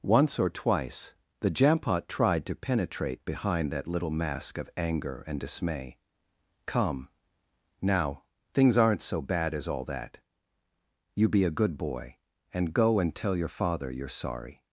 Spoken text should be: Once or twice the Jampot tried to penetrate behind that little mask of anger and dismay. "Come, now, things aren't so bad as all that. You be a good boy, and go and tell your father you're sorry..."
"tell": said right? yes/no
yes